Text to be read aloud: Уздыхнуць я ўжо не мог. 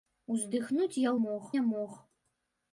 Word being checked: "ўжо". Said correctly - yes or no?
no